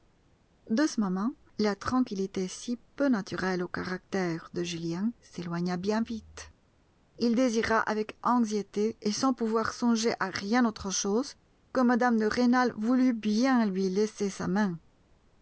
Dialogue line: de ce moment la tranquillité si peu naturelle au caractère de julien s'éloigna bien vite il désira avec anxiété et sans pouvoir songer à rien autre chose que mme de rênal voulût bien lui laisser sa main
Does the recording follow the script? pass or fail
pass